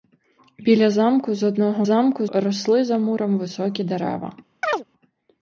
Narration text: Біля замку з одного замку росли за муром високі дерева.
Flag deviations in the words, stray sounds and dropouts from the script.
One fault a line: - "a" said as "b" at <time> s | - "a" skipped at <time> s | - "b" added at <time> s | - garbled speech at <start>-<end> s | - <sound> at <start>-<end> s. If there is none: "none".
- chirp at 4.6-4.8 s